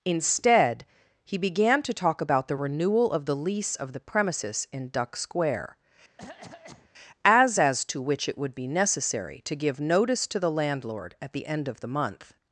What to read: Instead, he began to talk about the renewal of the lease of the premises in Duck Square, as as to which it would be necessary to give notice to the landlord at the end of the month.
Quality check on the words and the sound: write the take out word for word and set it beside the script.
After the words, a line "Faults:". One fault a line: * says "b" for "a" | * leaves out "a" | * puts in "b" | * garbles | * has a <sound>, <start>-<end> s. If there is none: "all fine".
Instead, he began to talk about the renewal of the lease of the premises in Duck Square, as as to which it would be necessary to give notice to the landlord at the end of the month.
Faults:
* has a cough, 6.2-6.9 s